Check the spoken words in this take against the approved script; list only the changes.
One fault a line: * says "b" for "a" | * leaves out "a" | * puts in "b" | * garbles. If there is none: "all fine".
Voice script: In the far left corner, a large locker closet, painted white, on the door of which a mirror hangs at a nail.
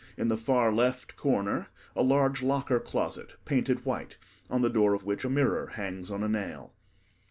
* says "on" for "at"